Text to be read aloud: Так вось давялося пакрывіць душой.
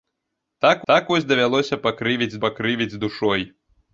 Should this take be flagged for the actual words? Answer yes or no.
yes